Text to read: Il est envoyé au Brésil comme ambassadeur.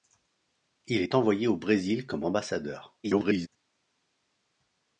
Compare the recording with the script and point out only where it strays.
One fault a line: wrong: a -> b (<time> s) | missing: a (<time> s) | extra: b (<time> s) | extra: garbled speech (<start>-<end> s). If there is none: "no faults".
extra: garbled speech (3.0-3.5 s)